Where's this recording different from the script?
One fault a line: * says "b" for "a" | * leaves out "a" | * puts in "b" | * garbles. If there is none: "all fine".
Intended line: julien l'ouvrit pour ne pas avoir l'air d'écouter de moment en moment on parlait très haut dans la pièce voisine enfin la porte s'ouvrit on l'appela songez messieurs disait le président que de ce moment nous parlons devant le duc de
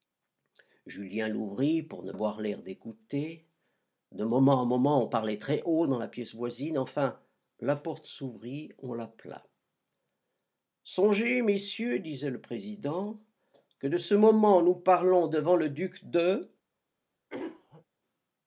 * leaves out "pas"